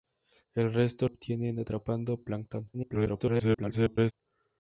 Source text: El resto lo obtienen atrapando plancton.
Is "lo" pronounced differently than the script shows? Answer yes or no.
yes